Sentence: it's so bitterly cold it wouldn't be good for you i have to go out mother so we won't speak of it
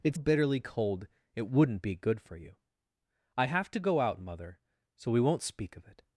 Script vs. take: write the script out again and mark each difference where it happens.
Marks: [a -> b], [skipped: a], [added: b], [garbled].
it's [skipped: so] bitterly cold it wouldn't be good for you i have to go out mother so we won't speak of it